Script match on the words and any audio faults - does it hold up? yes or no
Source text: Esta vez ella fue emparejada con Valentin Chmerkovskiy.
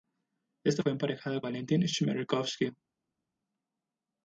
no